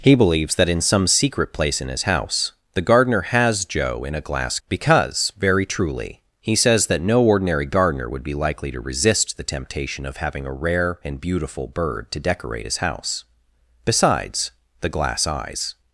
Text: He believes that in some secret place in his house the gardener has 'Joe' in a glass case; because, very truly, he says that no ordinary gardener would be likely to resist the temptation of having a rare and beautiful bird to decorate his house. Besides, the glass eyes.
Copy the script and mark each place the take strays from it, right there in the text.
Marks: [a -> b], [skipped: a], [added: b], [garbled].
He believes that in some secret place in his house the gardener has 'Joe' in a glass [skipped: case;] because, very truly, he says that no ordinary gardener would be likely to resist the temptation of having a rare and beautiful bird to decorate his house. Besides, the glass eyes.